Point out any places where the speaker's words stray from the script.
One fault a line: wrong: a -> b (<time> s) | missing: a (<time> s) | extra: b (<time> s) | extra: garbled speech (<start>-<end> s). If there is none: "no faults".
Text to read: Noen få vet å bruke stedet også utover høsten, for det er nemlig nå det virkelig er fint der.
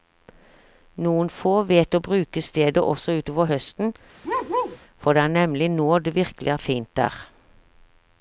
no faults